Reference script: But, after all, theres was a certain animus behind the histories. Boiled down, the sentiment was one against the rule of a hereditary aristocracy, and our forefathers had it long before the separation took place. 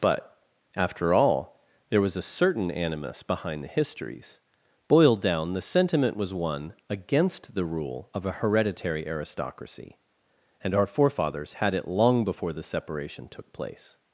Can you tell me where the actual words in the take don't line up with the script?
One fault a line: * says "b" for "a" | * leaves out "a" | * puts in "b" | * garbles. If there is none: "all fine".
* says "there" for "theres"